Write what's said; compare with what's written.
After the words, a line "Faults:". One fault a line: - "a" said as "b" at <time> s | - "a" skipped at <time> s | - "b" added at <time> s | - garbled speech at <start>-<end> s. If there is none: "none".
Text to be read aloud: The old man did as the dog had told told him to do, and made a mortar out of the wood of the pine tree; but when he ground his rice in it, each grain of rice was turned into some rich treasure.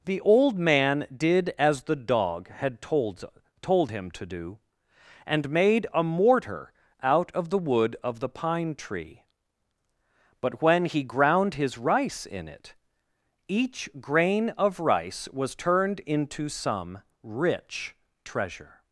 The old man did as the dog had told told him to do, and made a mortar out of the wood of the pine tree; but when he ground his rice in it, each grain of rice was turned into some rich treasure.
Faults:
none